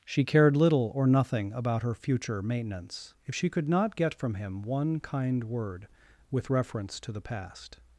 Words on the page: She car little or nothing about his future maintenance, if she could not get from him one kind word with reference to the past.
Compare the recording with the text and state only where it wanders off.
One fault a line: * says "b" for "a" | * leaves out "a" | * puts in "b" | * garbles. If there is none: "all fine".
* says "cared" for "car"
* says "her" for "his"